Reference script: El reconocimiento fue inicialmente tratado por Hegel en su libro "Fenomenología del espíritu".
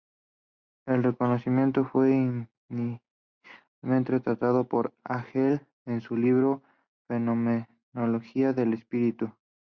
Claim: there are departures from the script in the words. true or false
false